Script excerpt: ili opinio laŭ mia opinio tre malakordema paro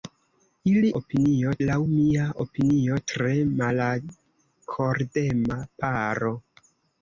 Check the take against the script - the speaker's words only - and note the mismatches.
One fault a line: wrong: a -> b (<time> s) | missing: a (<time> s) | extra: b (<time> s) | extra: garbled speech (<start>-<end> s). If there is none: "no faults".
no faults